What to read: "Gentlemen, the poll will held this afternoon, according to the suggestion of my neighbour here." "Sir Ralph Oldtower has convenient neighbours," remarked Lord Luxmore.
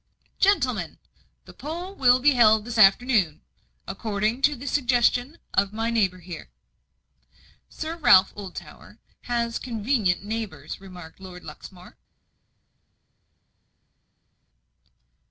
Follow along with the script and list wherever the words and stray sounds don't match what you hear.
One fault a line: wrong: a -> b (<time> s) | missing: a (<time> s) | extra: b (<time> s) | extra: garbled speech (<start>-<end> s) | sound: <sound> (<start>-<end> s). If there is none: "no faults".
extra: be (2.2 s)